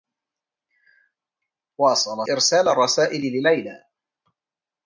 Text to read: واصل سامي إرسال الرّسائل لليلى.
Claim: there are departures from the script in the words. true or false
true